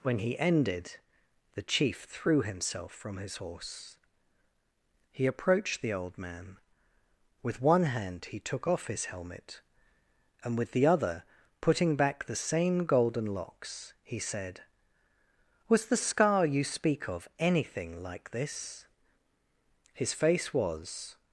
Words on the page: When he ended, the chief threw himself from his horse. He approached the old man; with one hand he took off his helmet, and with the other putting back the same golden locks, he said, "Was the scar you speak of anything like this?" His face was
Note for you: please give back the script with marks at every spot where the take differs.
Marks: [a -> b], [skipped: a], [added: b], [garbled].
When he ended, the chief threw himself from his horse. He approached the old man; with one hand he took off his helmet, and with the other putting back the same golden locks, he said, "Was the scar you speak of anything like this?" His face was